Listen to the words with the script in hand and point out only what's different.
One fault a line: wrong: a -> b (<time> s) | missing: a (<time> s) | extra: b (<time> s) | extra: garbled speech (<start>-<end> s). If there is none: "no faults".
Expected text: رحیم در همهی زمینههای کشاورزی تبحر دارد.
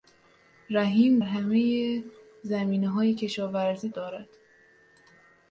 missing: در (1.2 s)
missing: تبحر (3.9 s)